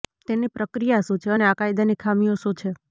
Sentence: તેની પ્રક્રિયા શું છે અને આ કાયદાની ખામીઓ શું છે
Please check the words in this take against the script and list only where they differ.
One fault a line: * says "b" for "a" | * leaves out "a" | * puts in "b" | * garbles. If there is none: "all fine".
all fine